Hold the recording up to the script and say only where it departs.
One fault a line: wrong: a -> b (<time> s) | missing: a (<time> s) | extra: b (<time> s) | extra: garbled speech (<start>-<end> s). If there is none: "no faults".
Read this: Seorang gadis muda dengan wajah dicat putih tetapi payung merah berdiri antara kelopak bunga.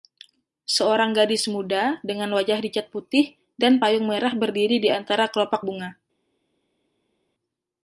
wrong: tetapi -> dan (3.5 s)
extra: di (4.8 s)